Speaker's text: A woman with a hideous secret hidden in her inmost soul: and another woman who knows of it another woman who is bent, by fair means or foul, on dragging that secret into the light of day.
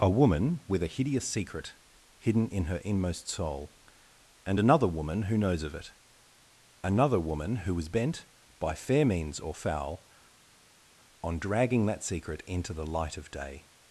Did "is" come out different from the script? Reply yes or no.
yes